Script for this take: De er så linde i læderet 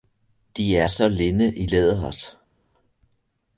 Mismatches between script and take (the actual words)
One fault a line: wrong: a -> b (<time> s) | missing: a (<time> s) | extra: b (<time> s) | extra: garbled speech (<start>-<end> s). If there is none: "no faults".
no faults